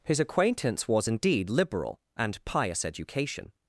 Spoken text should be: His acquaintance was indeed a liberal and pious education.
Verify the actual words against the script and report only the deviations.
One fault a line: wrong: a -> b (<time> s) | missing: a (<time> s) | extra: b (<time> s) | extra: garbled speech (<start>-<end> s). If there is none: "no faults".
missing: a (1.5 s)